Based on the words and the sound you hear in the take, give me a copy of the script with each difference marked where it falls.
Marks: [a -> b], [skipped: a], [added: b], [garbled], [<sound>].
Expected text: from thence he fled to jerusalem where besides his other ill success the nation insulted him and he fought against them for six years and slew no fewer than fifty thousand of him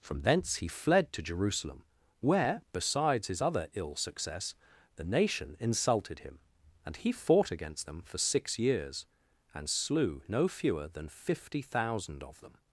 from thence he fled to jerusalem where besides his other ill success the nation insulted him and he fought against them for six years and slew no fewer than fifty thousand of [him -> them]